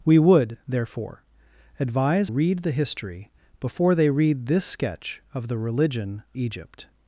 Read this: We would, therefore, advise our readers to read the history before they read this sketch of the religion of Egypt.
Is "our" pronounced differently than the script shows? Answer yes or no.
yes